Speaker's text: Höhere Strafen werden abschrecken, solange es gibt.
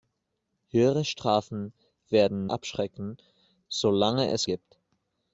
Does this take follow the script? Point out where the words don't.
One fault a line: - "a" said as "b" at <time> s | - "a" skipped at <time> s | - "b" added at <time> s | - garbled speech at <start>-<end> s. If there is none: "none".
none